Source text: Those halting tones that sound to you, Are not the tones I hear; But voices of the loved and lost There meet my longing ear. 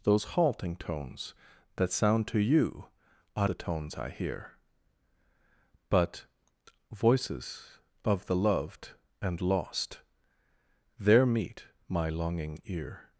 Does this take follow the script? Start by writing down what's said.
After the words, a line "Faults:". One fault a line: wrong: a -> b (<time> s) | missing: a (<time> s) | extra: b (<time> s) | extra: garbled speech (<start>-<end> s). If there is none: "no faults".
Those halting tones that sound to you, Are the tones I hear; But voices of the loved and lost There meet my longing ear.
Faults:
missing: not (3.5 s)